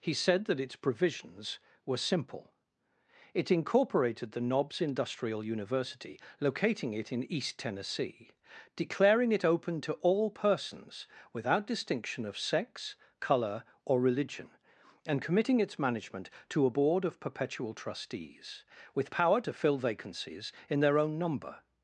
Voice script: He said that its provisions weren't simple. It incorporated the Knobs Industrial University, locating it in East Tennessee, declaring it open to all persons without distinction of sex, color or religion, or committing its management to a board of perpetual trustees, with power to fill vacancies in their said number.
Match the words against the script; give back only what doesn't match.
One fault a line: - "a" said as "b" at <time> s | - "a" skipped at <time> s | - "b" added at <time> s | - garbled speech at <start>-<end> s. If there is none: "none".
- "weren't" said as "were" at 1.9 s
- "or" said as "and" at 15.0 s
- "said" said as "own" at 21.0 s